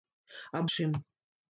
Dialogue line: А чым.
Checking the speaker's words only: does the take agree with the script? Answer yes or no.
yes